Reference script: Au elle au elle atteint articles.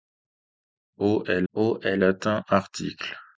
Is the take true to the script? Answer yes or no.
yes